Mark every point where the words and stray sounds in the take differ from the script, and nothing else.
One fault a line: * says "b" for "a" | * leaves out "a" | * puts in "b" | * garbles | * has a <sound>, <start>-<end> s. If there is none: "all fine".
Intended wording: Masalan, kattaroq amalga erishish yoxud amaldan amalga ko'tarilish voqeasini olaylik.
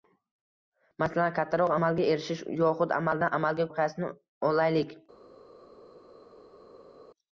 * leaves out "ko'tarilish"